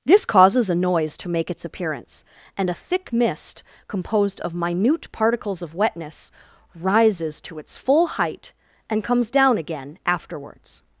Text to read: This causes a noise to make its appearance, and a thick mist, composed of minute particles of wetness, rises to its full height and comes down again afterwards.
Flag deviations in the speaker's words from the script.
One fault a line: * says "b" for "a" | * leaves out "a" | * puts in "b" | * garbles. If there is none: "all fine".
all fine